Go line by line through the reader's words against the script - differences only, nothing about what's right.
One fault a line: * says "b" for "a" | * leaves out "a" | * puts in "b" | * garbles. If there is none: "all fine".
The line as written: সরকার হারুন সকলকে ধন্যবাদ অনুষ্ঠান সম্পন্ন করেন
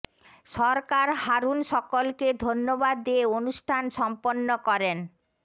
* puts in "দিয়ে"